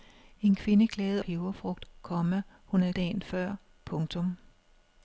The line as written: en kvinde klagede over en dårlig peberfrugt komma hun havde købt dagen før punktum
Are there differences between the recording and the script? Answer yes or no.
yes